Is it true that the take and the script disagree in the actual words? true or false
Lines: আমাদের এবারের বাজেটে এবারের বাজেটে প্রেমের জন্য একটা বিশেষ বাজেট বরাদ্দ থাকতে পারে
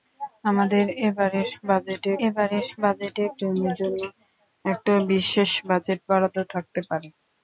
false